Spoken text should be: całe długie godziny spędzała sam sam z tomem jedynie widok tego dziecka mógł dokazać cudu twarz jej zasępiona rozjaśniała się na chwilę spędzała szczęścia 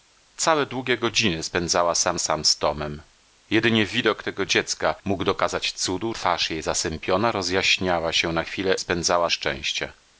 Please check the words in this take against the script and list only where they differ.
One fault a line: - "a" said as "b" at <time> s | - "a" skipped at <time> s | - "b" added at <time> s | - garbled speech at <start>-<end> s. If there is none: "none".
none